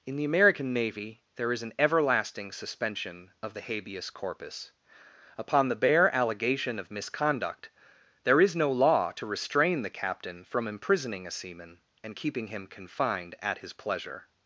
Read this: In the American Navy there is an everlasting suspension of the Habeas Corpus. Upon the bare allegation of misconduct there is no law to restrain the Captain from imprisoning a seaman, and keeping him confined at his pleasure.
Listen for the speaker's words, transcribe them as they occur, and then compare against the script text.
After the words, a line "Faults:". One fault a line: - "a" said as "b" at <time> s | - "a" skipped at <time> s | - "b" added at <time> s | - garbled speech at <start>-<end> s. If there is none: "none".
In the American Navy there is an everlasting suspension of the Habeas Corpus. Upon the bare allegation of misconduct there is no law to restrain the Captain from imprisoning a seaman, and keeping him confined at his pleasure.
Faults:
none